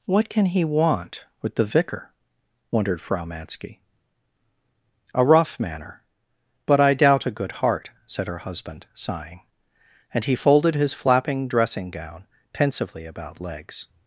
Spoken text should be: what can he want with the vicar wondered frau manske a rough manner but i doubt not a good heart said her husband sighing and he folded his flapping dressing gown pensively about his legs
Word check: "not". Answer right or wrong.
wrong